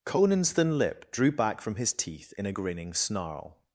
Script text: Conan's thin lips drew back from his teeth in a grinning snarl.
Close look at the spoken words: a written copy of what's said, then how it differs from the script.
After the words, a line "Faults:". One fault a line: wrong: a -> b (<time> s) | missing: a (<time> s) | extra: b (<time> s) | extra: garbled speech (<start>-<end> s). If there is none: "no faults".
Conan's thin lip drew back from his teeth in a grinning snarl.
Faults:
wrong: lips -> lip (0.8 s)